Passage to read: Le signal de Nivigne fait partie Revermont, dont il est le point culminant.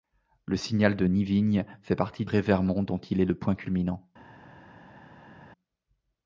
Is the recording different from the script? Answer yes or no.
no